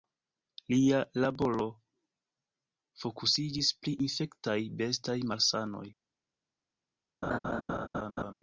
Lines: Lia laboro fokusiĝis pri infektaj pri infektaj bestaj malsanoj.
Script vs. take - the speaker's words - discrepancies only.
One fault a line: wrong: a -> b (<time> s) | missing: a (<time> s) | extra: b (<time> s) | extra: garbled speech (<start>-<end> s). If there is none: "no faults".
missing: pri infektaj (4.6 s)